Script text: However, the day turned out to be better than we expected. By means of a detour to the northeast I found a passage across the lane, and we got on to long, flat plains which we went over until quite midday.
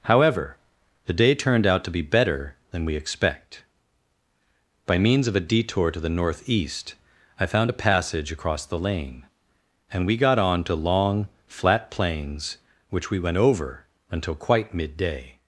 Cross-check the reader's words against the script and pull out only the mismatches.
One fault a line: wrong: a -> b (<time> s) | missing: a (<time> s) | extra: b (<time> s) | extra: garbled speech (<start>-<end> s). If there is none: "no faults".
wrong: expected -> expect (3.0 s)